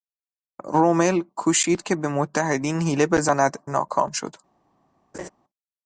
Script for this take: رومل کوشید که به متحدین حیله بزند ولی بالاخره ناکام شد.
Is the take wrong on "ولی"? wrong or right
wrong